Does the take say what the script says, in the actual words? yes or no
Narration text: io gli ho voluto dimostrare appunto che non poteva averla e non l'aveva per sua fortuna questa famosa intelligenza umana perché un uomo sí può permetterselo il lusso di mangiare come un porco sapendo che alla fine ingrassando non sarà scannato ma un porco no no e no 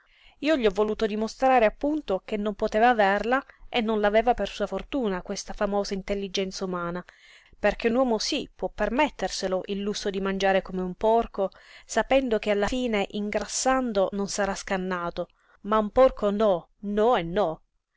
yes